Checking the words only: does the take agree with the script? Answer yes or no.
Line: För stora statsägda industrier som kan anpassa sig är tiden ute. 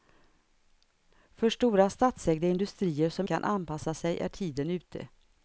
yes